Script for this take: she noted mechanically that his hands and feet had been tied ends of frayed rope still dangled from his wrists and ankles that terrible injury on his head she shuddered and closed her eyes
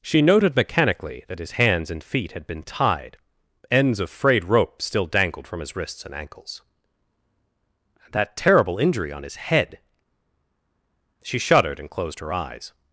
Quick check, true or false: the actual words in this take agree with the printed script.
true